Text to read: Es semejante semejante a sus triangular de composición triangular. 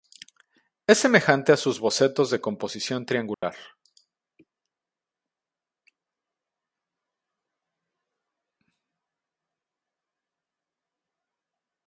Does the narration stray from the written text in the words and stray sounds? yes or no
yes